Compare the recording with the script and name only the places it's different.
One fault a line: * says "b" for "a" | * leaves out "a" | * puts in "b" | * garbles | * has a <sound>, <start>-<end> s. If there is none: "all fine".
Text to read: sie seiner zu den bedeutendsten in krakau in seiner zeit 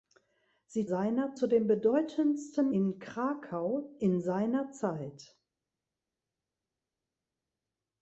all fine